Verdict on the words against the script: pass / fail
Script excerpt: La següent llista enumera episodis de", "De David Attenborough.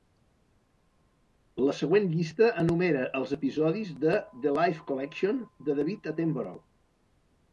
fail